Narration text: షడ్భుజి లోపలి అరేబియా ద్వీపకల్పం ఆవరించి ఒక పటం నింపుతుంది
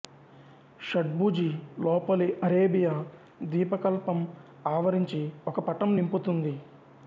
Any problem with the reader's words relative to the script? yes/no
no